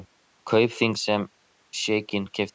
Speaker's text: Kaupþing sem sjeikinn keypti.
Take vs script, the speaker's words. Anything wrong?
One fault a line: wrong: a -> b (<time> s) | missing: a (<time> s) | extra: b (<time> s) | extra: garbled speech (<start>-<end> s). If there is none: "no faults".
no faults